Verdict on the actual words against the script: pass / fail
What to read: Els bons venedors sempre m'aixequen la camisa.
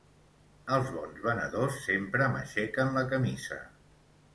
pass